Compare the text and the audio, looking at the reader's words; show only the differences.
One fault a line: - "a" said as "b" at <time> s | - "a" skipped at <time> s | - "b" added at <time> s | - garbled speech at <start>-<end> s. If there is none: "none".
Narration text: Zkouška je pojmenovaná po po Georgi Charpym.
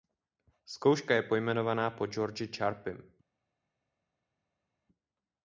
- "po" skipped at 2.1 s